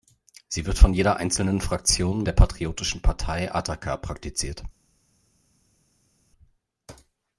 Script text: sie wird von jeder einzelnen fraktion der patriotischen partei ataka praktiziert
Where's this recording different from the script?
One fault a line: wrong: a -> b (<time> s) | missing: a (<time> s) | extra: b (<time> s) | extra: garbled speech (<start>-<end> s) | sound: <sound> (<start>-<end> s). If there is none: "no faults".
no faults